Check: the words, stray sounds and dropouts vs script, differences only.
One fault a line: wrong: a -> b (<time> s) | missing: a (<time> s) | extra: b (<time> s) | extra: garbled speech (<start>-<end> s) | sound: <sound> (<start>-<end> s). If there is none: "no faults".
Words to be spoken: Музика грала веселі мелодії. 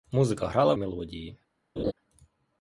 missing: веселі (0.7 s)
sound: laugh (1.8-1.9 s)